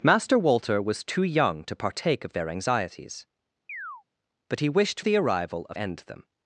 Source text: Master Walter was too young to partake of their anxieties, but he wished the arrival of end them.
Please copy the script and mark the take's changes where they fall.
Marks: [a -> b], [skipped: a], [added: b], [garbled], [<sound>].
Master Walter was too young to partake of their anxieties, [chirp] but he wished the arrival of end them.